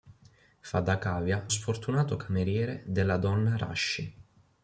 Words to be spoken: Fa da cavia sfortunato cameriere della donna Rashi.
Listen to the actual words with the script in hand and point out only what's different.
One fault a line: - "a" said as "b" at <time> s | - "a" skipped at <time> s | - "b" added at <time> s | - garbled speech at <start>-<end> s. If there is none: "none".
none